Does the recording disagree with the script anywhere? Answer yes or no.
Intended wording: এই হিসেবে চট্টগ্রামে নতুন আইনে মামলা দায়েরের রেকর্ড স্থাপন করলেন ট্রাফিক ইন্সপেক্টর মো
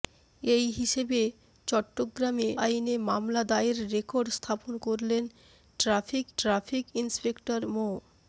yes